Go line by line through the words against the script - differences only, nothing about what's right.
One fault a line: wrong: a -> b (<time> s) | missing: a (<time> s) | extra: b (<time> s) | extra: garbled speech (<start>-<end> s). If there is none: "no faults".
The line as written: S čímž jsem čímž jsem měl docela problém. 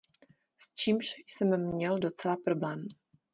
missing: čímž jsem (1.7 s)